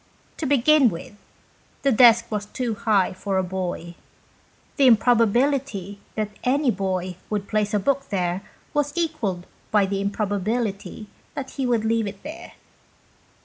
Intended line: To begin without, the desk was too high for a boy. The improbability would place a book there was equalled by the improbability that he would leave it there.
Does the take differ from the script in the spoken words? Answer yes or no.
yes